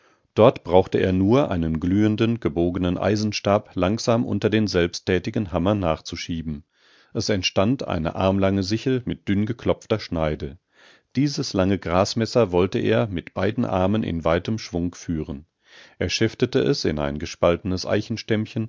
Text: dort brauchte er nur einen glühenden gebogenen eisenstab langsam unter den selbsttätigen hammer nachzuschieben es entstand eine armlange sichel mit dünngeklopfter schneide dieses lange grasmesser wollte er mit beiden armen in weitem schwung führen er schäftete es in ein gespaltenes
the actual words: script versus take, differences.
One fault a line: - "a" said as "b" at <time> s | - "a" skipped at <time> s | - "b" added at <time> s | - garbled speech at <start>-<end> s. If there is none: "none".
none